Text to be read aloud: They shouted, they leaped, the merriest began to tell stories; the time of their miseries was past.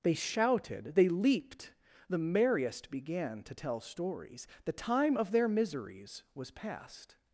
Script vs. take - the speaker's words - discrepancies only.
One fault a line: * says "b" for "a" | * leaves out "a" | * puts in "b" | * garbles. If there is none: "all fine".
all fine